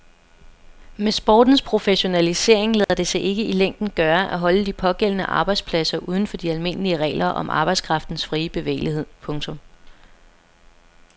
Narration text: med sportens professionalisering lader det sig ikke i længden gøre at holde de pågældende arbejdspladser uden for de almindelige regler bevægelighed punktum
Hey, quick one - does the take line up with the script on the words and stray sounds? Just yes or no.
no